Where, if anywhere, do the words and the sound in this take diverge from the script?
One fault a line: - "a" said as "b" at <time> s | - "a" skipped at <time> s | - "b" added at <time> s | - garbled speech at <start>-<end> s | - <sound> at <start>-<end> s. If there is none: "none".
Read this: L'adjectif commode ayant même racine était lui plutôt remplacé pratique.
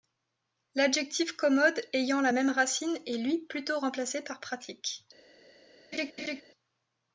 - "la" added at 2.2 s
- "était" said as "est" at 3.0 s
- "par" added at 4.2 s
- laugh at 5.9-6.4 s